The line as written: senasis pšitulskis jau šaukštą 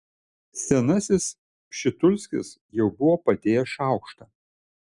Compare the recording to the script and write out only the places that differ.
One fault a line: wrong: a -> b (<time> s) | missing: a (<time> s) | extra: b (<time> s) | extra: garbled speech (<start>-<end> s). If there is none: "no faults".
extra: buvo padėjęs (3.0 s)